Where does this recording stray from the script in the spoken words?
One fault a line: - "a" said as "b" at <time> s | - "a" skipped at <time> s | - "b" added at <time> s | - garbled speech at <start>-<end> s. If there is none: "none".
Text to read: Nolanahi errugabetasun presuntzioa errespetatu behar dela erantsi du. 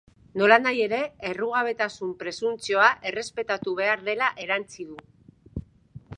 - "ere" added at 0.8 s